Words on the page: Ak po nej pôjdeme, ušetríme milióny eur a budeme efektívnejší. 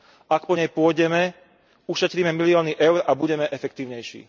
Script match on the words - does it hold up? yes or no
yes